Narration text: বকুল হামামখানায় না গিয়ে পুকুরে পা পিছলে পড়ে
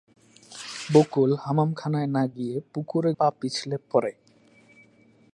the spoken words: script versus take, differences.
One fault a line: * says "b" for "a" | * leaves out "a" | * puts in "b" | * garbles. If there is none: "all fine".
all fine